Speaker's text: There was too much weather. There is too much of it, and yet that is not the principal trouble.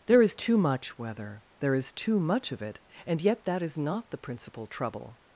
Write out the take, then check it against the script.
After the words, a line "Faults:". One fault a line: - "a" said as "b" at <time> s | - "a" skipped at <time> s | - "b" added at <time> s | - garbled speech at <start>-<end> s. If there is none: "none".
There is too much weather. There is too much of it, and yet that is not the principal trouble.
Faults:
- "was" said as "is" at 0.2 s